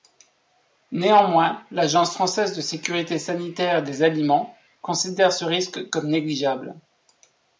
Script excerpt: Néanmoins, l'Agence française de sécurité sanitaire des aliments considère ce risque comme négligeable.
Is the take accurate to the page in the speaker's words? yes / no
yes